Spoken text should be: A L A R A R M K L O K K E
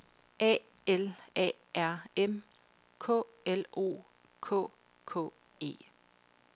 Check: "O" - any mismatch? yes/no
no